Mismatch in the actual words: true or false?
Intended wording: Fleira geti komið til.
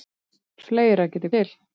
true